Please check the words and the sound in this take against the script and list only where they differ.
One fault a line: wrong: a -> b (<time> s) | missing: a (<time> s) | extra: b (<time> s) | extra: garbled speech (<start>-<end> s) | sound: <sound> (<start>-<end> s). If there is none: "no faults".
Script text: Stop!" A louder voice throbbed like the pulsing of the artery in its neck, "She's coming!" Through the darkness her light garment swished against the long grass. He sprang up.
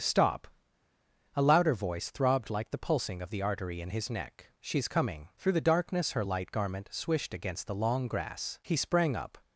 wrong: its -> his (3.9 s)